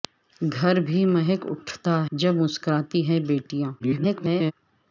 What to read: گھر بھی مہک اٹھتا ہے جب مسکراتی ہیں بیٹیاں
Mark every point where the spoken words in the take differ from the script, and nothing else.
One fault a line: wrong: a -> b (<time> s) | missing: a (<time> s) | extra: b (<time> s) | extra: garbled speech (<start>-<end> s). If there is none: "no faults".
missing: ہے (2.0 s)
extra: garbled speech (3.8-4.5 s)